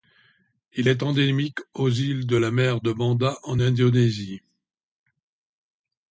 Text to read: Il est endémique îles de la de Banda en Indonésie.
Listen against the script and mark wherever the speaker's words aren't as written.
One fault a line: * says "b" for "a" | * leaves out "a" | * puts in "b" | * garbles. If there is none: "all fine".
* puts in "aux"
* puts in "mer"